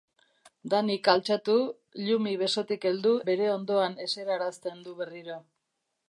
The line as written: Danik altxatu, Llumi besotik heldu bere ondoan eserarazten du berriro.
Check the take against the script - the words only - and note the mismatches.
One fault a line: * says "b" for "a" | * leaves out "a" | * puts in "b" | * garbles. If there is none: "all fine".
all fine